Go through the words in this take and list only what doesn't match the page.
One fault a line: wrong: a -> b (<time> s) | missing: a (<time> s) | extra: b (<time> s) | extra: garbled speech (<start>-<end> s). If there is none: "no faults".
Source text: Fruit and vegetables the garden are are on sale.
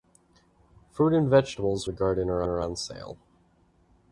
no faults